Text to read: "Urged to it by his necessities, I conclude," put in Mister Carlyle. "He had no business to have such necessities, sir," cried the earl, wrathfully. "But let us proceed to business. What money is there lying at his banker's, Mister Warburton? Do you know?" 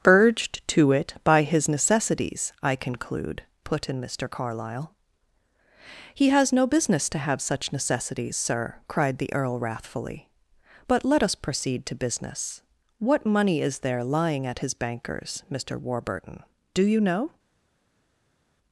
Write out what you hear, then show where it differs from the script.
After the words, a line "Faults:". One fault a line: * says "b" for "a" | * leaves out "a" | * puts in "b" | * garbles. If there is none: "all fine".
"Urged to it by his necessities, I conclude," put in Mister Carlyle. "He has no business to have such necessities, sir," cried the earl, wrathfully. "But let us proceed to business. What money is there lying at his banker's, Mister Warburton? Do you know?"
Faults:
* says "has" for "had"